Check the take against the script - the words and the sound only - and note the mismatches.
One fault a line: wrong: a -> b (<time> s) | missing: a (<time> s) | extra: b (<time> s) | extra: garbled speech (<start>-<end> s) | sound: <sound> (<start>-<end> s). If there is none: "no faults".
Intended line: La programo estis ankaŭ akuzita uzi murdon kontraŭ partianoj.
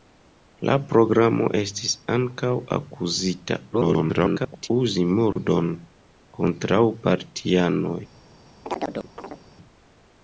extra: garbled speech (3.7-4.7 s)
sound: dropout (5.3-5.4 s)
sound: chirp (8.6-9.4 s)